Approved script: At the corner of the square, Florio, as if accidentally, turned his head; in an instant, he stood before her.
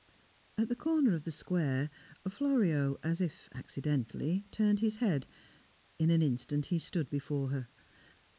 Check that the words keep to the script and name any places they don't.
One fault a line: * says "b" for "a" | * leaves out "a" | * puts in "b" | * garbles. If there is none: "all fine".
all fine